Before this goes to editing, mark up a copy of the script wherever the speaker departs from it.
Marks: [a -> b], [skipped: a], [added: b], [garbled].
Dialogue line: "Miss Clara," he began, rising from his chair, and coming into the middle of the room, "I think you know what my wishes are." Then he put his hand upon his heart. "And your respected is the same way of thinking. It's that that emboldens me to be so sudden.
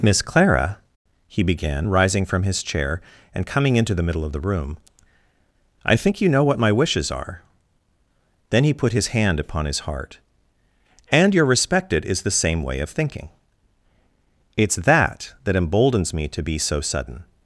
"Miss Clara," he began, rising from his chair, and coming into the middle of the room, "I think you know what my wishes are." Then he put his hand upon his heart. "And your respected is the same way of thinking. It's that that emboldens me to be so sudden.